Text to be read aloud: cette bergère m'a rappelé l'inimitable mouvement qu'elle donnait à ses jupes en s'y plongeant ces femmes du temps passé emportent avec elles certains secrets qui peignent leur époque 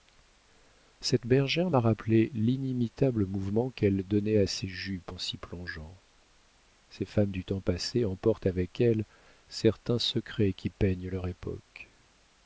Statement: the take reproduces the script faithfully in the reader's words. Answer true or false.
true